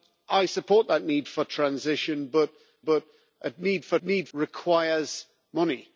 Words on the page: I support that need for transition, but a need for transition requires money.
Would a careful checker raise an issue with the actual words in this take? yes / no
yes